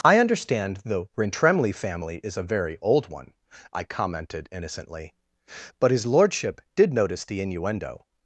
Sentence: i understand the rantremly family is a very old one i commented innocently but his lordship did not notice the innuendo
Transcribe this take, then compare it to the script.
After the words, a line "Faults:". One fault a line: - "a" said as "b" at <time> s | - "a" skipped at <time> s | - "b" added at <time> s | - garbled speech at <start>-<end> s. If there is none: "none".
i understand the rantremly family is a very old one i commented innocently but his lordship did notice the innuendo
Faults:
- "not" skipped at 6.9 s